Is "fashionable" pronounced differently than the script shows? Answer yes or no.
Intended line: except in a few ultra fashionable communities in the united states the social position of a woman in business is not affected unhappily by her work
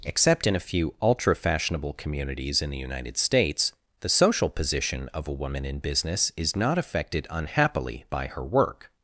no